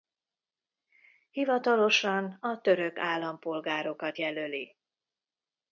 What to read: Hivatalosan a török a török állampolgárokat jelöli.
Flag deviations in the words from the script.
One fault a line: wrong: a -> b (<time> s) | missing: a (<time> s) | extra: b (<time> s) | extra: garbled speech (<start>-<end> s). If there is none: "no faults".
missing: a török (3.0 s)